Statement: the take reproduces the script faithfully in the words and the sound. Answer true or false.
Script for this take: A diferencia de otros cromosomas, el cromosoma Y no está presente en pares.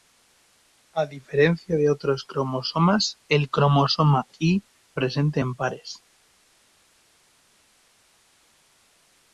false